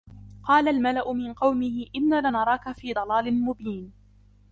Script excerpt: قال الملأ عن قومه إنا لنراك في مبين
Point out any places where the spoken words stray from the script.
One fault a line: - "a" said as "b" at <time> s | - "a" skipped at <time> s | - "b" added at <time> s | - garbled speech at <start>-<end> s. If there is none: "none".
- "عن" said as "من" at 1.1 s
- "ضلال" added at 2.9 s